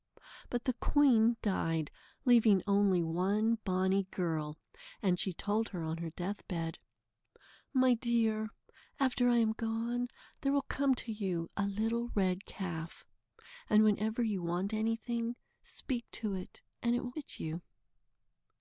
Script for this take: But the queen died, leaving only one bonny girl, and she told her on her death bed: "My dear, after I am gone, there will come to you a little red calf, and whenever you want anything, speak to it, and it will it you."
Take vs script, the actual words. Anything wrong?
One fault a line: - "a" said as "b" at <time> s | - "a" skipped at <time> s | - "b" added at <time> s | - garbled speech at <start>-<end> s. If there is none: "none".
none